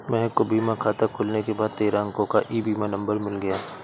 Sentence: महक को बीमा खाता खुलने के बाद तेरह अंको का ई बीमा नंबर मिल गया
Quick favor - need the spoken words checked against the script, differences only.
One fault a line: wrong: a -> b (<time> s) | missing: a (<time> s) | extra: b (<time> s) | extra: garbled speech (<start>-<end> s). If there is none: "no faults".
no faults